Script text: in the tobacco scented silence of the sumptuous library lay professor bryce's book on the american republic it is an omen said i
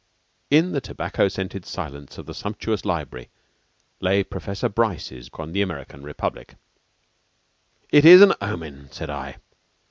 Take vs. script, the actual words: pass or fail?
fail